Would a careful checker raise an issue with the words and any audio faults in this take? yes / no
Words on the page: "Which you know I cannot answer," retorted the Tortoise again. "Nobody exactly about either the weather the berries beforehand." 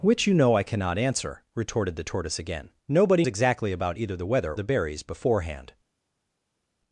no